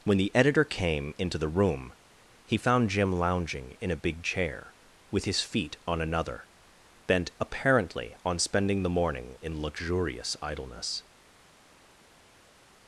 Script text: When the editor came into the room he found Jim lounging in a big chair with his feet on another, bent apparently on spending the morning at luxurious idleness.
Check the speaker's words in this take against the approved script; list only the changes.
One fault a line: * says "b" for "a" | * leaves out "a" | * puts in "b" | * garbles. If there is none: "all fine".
* says "in" for "at"